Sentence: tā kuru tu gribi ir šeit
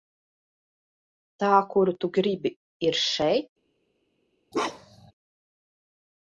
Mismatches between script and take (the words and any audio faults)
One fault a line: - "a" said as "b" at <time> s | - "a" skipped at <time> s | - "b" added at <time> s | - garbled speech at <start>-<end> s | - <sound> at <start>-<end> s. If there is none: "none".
- bark at 4.5-5.1 s